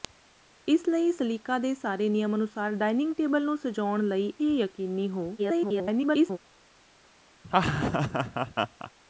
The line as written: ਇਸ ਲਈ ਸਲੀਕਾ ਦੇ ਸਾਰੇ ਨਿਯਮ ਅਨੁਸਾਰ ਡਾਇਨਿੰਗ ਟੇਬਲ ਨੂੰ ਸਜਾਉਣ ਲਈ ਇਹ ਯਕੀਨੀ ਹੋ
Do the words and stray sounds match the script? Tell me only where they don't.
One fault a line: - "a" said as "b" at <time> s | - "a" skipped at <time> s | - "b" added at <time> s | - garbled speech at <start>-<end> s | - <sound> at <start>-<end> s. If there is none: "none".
- "ਇਹ" skipped at 4.3 s
- garbled speech at 5.4-6.4 s
- laugh at 7.4-8.9 s